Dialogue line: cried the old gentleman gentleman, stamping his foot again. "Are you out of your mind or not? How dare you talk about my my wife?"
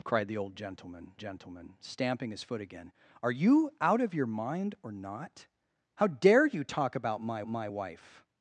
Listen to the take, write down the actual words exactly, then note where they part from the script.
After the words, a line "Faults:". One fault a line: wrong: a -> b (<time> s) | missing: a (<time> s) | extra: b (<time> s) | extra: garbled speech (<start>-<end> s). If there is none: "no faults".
cried the old gentleman gentleman, stamping his foot again. "Are you out of your mind or not? How dare you talk about my my wife?"
Faults:
no faults